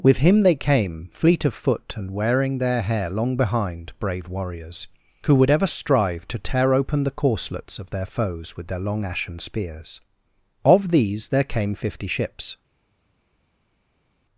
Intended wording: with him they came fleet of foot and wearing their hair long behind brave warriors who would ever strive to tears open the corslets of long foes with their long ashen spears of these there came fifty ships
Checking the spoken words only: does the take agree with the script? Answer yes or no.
no